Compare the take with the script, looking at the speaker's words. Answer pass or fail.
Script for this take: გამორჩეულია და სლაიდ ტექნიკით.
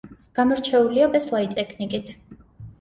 pass